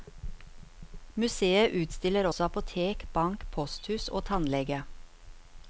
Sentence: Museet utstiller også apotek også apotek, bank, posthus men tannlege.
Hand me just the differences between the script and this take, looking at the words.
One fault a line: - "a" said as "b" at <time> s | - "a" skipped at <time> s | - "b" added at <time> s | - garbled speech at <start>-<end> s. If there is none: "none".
- "også apotek" skipped at 3.1 s
- "men" said as "og" at 4.1 s